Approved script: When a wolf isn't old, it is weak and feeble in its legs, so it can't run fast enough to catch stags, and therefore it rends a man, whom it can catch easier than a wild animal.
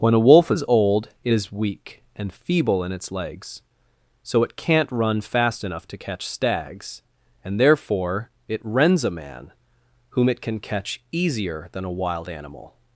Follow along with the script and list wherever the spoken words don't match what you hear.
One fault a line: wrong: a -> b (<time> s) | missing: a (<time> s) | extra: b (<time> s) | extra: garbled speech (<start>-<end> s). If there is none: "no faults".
wrong: isn't -> is (0.5 s)